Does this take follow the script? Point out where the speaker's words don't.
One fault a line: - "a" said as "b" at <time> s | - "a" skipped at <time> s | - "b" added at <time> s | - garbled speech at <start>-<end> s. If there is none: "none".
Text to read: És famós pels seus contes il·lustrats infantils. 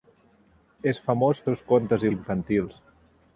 - "pels" skipped at 1.4 s
- "il·lustrats" skipped at 2.1 s